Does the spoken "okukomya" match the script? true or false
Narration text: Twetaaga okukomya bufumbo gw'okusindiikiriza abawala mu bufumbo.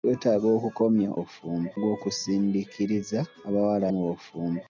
true